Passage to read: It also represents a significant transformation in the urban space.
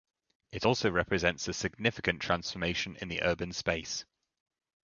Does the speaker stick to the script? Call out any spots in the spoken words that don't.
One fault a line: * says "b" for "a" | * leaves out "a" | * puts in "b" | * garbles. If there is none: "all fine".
all fine